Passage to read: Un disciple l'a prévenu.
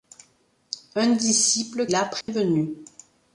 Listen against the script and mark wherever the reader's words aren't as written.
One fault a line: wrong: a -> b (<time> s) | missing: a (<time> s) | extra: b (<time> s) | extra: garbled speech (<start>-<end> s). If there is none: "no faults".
no faults